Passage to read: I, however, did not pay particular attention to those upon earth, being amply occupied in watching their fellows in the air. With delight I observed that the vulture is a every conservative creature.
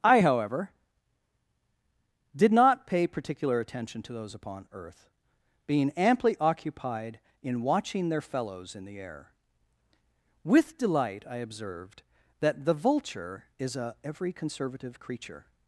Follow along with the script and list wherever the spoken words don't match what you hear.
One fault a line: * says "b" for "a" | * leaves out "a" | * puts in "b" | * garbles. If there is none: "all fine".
all fine